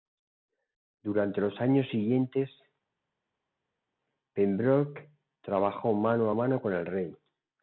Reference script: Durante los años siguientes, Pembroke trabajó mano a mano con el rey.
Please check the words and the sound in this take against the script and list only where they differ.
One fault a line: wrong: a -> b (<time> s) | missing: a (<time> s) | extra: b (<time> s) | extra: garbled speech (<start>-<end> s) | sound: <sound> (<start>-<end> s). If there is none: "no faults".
no faults